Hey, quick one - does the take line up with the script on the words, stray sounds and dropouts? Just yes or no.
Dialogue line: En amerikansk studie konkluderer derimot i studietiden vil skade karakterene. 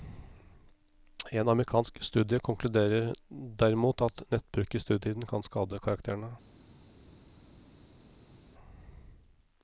no